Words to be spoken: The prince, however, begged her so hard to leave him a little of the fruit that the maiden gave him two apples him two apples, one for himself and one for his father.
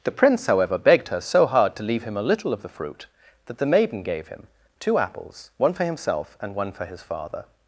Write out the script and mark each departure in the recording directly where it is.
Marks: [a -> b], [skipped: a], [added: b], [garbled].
The prince, however, begged her so hard to leave him a little of the fruit that the maiden gave him two apples [skipped: him two apples,] one for himself and one for his father.